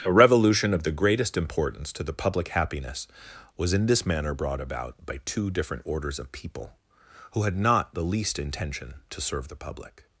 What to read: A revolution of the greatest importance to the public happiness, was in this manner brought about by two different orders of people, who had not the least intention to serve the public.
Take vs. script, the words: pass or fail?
pass